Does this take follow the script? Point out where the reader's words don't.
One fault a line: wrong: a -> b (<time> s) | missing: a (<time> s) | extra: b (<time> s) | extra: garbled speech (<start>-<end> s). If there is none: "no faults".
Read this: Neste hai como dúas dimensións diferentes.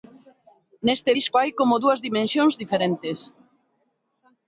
extra: disco (1.2 s)